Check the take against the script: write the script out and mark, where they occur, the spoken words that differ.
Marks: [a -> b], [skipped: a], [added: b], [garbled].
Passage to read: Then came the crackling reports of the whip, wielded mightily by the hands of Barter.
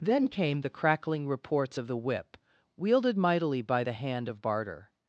Then came the crackling reports of the whip, wielded mightily by the [hands -> hand] of Barter.